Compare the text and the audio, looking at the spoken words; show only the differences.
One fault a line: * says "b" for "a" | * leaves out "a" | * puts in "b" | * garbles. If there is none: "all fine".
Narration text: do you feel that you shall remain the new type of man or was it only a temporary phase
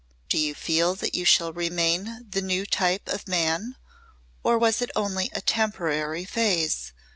all fine